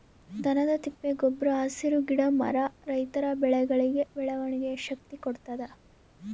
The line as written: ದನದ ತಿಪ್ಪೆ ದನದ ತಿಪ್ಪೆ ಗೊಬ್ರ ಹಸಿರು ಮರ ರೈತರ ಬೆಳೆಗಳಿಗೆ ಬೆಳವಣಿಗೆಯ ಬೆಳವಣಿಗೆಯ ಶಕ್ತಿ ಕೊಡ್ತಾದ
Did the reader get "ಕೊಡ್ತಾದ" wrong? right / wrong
right